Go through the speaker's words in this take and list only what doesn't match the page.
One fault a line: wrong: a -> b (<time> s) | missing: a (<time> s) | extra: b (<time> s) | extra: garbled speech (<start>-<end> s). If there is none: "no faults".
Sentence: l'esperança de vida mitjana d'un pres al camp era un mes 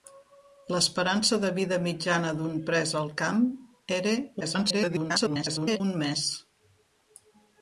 extra: garbled speech (4.4-5.8 s)